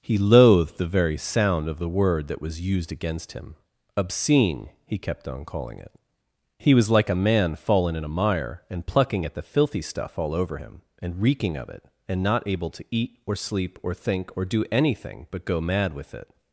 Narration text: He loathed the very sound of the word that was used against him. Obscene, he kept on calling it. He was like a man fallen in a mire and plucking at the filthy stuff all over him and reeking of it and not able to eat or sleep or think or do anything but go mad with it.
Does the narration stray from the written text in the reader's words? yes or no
no